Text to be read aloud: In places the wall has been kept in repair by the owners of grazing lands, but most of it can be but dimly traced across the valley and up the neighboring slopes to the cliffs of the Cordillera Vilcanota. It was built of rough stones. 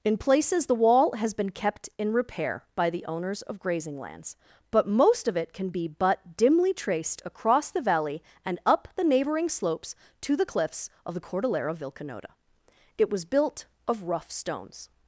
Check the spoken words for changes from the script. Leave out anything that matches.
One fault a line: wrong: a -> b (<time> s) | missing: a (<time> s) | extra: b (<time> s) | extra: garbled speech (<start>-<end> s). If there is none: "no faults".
no faults